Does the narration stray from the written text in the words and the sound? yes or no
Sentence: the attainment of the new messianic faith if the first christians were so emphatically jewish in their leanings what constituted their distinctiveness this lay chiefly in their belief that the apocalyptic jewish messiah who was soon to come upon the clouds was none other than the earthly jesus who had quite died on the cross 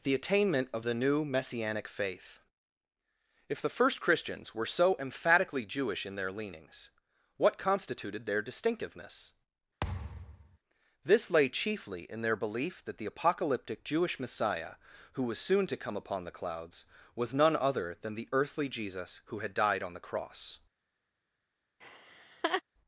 yes